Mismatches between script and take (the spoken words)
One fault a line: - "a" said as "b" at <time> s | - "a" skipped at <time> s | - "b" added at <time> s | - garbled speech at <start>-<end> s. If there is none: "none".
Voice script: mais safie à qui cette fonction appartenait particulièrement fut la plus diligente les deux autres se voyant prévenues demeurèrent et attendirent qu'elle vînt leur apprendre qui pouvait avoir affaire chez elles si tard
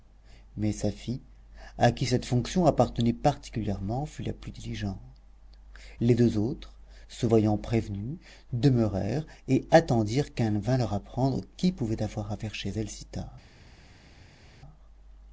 none